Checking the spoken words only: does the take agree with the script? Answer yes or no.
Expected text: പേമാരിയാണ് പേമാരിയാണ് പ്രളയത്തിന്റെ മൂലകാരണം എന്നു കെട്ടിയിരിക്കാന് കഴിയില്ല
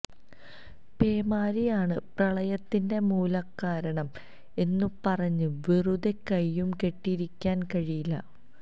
no